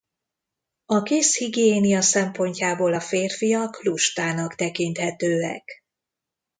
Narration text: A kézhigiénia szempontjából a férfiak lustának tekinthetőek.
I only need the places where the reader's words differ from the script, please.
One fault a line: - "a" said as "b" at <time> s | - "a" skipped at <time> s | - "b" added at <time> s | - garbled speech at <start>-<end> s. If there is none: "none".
none